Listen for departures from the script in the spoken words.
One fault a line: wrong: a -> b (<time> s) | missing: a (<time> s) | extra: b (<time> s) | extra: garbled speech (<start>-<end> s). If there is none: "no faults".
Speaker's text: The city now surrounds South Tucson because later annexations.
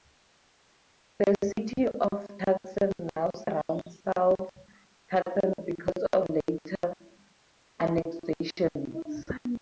extra: of Tucson (1.9 s)
extra: of (6.1 s)